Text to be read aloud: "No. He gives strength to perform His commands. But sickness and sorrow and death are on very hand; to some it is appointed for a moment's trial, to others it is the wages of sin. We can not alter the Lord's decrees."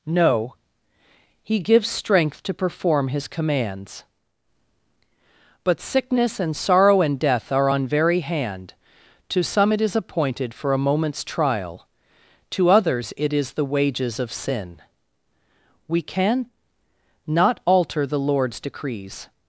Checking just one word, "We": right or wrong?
right